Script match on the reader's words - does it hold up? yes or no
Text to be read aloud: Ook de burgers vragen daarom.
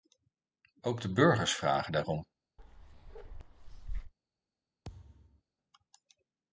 yes